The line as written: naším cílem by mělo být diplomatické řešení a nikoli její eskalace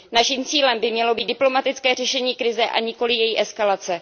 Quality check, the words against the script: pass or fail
fail